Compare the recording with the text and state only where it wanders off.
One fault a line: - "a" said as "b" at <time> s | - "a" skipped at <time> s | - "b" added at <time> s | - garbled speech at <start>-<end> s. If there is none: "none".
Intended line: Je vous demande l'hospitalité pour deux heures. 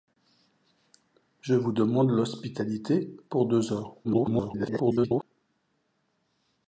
- garbled speech at 4.0-5.2 s